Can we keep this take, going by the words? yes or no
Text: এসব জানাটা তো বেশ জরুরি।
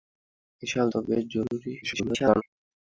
no